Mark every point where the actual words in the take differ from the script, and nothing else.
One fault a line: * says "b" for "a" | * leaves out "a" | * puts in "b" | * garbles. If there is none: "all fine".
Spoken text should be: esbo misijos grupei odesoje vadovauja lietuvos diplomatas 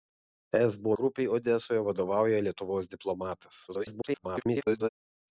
* leaves out "misijos"
* garbles